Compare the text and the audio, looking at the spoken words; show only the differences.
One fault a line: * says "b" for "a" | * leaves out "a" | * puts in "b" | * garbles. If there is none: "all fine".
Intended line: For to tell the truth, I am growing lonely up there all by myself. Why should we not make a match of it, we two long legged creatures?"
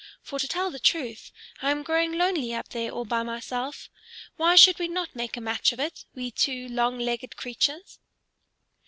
all fine